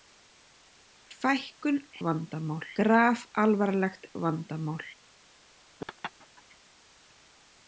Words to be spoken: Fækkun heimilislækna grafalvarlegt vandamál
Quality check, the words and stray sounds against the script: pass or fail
fail